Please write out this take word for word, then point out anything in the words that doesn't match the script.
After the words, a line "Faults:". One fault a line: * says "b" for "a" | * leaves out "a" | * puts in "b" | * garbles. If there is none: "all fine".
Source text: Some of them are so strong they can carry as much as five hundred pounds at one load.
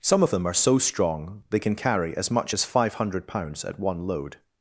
Some of them are so strong they can carry as much as five hundred pounds at one load.
Faults:
all fine